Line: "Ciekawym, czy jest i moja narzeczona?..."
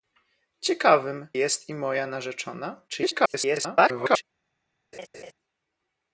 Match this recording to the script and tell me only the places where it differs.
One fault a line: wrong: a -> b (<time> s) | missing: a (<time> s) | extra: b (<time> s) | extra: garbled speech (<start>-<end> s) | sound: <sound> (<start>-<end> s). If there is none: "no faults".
missing: czy (1.3 s)
extra: garbled speech (2.9-4.2 s)
sound: laugh (4.9-5.3 s)